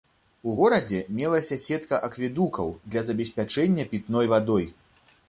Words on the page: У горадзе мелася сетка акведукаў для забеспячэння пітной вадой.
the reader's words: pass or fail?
pass